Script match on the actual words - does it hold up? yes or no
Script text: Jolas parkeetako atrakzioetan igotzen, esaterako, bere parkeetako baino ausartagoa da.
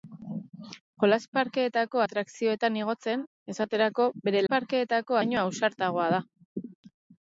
yes